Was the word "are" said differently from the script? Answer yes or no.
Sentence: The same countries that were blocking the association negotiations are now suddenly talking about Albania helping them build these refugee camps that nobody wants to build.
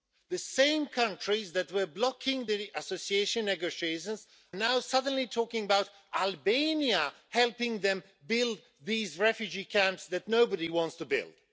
yes